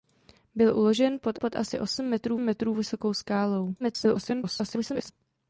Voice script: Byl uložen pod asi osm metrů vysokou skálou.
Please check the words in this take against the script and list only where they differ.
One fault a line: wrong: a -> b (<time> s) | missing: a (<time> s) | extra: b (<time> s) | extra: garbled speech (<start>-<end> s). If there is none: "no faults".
extra: pod (1.4 s)
extra: metrů (2.4 s)
extra: garbled speech (3.8-5.1 s)